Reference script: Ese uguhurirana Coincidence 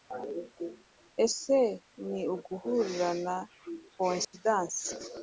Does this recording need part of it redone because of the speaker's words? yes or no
yes